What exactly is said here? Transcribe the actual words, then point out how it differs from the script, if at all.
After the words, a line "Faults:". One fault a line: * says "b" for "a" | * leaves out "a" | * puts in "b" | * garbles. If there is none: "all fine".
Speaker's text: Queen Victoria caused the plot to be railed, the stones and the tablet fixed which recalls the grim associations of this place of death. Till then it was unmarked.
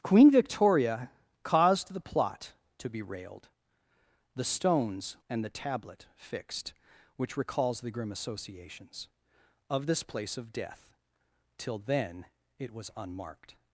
Queen Victoria caused the plot to be railed, the stones and the tablet fixed which recalls the grim associations of this place of death. Till then it was unmarked.
Faults:
all fine